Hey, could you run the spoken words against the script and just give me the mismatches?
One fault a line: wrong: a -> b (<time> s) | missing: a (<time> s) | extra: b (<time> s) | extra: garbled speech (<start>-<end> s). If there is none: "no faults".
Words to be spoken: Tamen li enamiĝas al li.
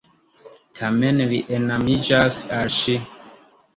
wrong: li -> ŝi (2.8 s)